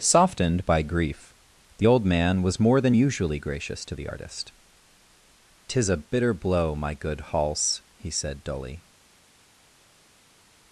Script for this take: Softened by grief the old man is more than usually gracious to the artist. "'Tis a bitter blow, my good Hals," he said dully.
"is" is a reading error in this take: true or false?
true